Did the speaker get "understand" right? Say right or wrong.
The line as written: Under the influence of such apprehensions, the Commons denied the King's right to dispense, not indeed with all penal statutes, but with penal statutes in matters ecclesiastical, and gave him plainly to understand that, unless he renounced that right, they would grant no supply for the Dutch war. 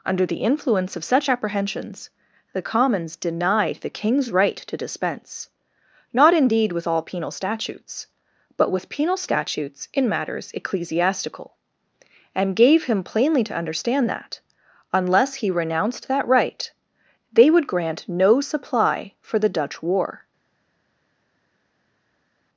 right